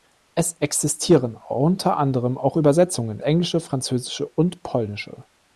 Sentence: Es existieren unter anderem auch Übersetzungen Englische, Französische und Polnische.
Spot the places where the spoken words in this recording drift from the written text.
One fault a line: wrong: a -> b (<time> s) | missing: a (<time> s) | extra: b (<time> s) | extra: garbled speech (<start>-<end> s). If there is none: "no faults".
no faults